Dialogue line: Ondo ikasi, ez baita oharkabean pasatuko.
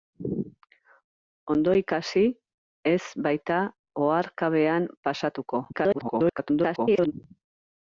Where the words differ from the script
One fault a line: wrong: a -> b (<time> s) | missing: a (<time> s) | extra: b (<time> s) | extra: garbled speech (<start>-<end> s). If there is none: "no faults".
extra: garbled speech (5.7-7.1 s)